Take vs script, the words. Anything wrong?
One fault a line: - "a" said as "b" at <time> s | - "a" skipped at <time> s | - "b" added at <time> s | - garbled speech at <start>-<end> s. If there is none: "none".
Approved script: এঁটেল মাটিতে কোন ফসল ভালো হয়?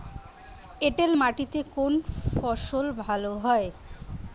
none